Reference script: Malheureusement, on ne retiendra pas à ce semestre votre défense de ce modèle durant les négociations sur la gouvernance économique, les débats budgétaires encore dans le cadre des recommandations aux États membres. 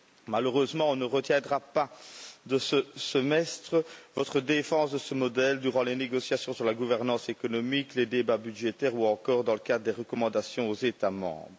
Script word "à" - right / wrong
wrong